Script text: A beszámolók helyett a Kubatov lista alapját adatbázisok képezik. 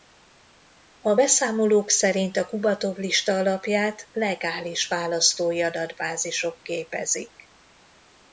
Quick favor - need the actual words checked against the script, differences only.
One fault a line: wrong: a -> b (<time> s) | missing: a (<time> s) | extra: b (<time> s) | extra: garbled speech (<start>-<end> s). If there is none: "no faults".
wrong: helyett -> szerint (1.9 s)
extra: legális választói (4.1 s)